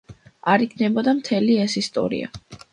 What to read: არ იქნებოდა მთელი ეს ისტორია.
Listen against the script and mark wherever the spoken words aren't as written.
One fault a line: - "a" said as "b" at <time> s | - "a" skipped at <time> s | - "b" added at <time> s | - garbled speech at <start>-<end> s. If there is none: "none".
none